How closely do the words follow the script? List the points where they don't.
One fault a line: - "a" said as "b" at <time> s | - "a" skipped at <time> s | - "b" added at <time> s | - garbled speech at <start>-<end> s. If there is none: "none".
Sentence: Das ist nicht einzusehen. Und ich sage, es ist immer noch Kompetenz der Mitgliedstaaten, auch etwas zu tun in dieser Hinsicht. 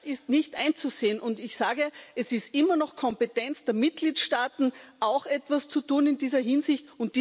none